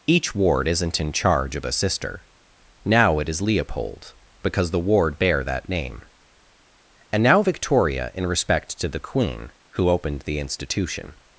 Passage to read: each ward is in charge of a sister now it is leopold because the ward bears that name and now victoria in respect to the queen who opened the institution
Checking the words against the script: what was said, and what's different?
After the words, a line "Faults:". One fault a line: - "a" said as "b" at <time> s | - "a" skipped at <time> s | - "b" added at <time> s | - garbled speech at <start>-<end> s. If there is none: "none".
each ward isn't in charge of a sister now it is leopold because the ward bear that name and now victoria in respect to the queen who opened the institution
Faults:
- "is" said as "isn't" at 0.7 s
- "bears" said as "bear" at 5.2 s